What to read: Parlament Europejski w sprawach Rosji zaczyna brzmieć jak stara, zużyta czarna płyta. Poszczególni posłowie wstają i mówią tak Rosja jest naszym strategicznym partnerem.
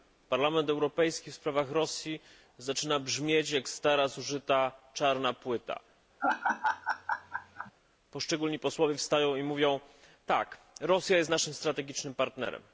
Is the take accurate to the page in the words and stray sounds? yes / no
no